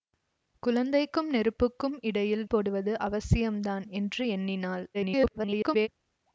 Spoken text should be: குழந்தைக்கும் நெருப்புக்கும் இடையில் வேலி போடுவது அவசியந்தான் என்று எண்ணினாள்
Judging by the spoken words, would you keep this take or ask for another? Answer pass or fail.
fail